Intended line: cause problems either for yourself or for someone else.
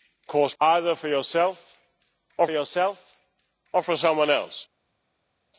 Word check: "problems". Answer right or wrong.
wrong